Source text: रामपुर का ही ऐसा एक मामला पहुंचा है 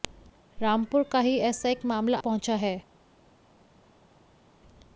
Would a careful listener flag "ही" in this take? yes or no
no